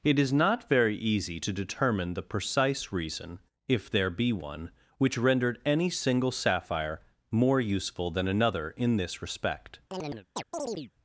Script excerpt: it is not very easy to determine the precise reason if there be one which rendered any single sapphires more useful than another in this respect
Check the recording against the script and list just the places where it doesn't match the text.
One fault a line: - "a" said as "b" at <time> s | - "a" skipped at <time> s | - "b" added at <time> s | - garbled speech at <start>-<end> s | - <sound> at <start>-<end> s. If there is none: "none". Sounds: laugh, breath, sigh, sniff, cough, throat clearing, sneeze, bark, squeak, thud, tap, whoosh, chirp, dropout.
- "sapphires" said as "sapphire" at 6.3 s
- chirp at 9.9-10.9 s